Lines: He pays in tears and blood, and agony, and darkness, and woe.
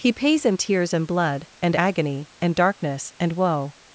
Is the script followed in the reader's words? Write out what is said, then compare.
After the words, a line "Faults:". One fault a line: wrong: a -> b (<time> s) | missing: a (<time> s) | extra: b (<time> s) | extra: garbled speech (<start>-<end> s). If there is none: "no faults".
He pays in tears and blood, and agony, and darkness, and woe.
Faults:
no faults